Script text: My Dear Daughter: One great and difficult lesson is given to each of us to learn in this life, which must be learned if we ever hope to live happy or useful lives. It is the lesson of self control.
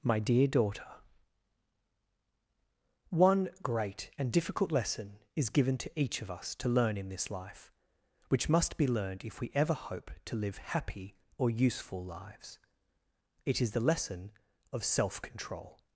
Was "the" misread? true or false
false